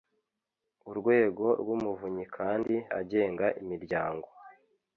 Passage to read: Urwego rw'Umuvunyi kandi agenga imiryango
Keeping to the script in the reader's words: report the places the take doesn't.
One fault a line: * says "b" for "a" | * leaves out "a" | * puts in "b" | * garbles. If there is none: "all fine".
all fine